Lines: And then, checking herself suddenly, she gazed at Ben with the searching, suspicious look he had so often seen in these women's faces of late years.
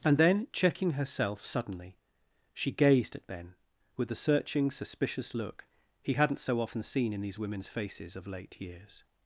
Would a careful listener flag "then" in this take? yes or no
no